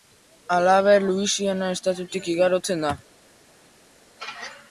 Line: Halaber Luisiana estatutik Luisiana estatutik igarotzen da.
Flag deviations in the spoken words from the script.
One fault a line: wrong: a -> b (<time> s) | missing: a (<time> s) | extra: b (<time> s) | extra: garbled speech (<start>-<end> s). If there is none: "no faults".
missing: Luisiana estatutik (2.3 s)